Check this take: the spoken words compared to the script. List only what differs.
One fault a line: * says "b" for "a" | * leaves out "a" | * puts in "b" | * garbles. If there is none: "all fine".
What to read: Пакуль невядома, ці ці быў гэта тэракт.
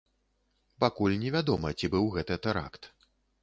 * leaves out "ці"